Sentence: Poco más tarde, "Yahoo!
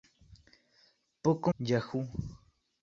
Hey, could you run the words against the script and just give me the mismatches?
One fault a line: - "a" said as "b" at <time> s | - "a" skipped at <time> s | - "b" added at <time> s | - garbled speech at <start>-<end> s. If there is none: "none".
- "más tarde" skipped at 1.5 s